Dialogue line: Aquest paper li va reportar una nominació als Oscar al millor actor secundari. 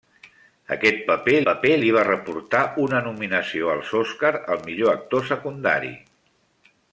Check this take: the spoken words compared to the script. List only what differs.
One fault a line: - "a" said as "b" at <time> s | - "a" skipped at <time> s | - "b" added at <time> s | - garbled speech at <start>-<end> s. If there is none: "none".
- "paper" added at 1.5 s